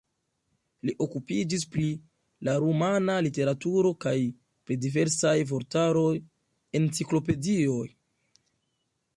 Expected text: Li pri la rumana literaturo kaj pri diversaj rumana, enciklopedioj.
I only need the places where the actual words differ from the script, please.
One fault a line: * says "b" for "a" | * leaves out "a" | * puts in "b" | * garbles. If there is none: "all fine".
* puts in "okupiĝis"
* says "vortaroj" for "rumana"